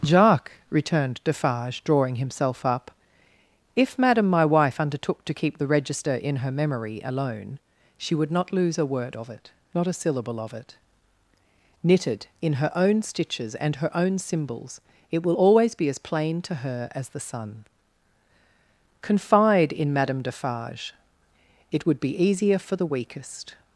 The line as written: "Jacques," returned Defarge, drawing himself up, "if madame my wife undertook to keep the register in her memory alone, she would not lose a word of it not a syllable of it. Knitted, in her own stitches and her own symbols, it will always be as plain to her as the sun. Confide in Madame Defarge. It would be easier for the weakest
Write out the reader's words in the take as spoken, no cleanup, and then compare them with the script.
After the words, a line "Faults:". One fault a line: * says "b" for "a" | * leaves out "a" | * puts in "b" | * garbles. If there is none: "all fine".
"Jacques," returned Defarge, drawing himself up, "if madame my wife undertook to keep the register in her memory alone, she would not lose a word of it not a syllable of it. Knitted, in her own stitches and her own symbols, it will always be as plain to her as the sun. Confide in Madame Defarge. It would be easier for the weakest
Faults:
all fine